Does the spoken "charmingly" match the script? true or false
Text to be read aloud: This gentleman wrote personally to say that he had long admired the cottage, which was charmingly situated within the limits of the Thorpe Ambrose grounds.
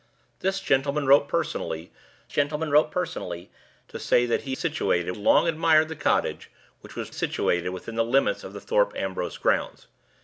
false